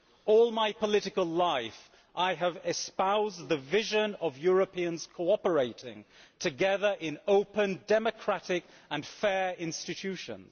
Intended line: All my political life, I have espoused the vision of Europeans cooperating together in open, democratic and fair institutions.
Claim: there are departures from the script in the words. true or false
false